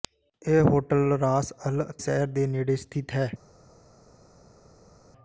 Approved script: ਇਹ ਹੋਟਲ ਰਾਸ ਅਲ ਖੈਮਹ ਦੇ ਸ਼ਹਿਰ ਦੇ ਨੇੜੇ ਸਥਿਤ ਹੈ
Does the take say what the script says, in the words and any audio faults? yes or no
no